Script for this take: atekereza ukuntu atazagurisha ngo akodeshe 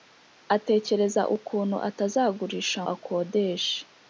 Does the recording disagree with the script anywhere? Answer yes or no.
yes